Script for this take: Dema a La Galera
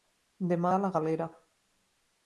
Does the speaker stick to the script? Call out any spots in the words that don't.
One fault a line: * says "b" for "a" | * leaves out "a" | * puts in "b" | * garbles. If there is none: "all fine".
all fine